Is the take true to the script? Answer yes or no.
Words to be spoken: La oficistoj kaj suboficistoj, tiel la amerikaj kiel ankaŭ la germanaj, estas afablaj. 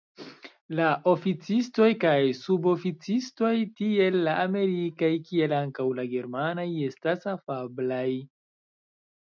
yes